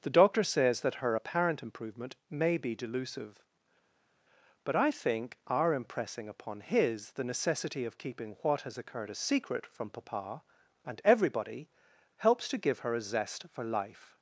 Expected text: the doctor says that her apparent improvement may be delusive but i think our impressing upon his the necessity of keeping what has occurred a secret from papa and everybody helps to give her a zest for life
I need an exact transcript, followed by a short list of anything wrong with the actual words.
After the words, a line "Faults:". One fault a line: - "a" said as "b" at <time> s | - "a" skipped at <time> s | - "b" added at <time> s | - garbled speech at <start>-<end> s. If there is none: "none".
the doctor says that her apparent improvement may be delusive but i think our impressing upon his the necessity of keeping what has occurred a secret from papa and everybody helps to give her a zest for life
Faults:
none